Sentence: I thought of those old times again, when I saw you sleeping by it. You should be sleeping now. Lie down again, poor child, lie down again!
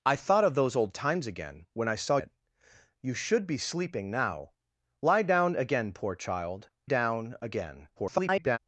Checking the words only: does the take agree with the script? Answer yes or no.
no